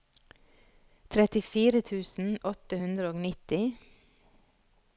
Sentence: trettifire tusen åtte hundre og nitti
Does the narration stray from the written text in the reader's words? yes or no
no